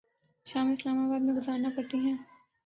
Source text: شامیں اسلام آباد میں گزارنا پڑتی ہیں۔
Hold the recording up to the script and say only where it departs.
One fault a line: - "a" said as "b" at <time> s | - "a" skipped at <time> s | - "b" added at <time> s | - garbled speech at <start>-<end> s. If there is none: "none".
none